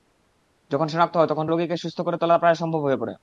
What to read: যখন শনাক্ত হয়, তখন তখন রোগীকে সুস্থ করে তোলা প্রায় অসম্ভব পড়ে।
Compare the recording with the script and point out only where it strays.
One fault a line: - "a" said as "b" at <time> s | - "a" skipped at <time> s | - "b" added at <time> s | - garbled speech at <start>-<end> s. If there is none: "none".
- "তখন" skipped at 1.4 s
- "হয়ে" added at 2.8 s